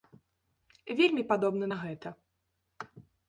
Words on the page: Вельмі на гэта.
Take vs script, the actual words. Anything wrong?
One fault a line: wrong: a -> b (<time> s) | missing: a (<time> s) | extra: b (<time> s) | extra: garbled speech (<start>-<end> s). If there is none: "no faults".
extra: падобна (1.3 s)